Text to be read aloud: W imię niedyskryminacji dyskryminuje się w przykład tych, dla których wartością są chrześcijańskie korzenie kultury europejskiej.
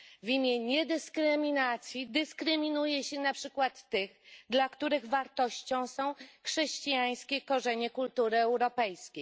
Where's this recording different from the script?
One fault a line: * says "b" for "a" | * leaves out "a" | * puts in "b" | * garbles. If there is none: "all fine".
* says "na" for "w"